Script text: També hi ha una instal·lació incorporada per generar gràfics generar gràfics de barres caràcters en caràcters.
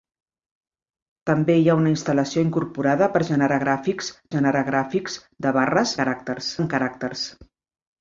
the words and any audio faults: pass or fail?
pass